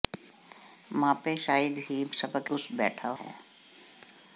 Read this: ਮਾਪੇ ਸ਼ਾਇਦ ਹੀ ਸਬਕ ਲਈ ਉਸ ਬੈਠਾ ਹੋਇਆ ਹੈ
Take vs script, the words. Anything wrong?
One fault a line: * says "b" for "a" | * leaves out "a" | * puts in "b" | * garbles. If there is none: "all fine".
* leaves out "ਲਈ"
* leaves out "ਹੋਇਆ"